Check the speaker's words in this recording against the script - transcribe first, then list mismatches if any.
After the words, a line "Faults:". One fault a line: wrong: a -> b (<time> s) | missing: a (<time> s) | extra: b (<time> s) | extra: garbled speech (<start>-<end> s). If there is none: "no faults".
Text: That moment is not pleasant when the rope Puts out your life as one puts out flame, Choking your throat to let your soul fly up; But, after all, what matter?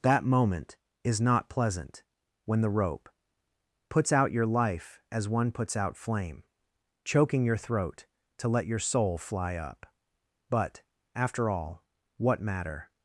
That moment is not pleasant when the rope Puts out your life as one puts out flame, Choking your throat to let your soul fly up; But, after all, what matter?
Faults:
no faults